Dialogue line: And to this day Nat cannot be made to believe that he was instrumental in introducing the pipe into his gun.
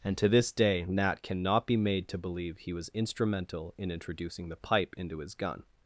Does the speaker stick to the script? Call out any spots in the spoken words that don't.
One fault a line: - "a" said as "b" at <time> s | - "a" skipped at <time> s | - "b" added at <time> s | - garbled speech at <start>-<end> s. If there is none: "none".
- "that" skipped at 2.6 s